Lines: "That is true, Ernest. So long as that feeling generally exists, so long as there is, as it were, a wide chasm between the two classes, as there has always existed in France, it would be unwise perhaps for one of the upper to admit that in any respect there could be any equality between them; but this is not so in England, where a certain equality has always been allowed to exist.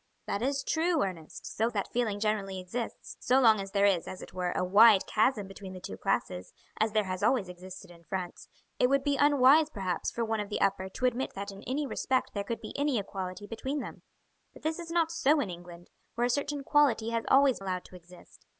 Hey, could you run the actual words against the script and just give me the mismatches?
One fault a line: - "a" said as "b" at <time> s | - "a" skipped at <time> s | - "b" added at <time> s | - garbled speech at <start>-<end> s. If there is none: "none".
- "long" skipped at 1.7 s
- "been" skipped at 17.6 s